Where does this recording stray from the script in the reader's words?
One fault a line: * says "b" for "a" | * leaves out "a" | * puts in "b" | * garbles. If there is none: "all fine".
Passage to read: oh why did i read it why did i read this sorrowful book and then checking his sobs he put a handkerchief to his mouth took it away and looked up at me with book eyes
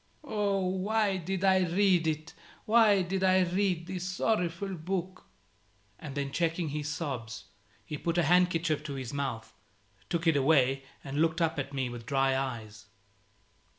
* says "dry" for "book"